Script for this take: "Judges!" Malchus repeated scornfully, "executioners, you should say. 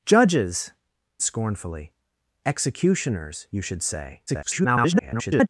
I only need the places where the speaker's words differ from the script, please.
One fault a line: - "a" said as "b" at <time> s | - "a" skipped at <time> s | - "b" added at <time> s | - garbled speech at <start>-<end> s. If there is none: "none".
- "Malchus repeated" skipped at 0.7 s
- garbled speech at 4.3-5.5 s